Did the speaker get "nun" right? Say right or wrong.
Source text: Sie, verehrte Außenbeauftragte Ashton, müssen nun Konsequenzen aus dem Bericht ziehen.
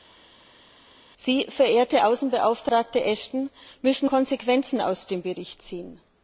wrong